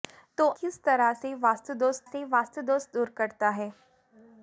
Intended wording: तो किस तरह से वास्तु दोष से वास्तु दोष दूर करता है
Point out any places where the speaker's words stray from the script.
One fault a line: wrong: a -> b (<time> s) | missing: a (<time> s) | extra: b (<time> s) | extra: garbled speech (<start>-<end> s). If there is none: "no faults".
no faults